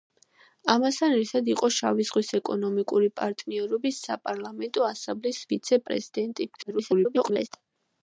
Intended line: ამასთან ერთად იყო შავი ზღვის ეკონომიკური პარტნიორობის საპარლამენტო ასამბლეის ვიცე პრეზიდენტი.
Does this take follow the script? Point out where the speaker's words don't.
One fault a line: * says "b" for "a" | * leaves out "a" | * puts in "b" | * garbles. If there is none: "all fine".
* garbles